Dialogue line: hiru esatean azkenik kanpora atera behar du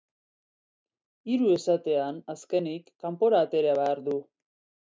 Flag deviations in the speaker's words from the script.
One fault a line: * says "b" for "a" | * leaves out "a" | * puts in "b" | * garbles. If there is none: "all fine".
all fine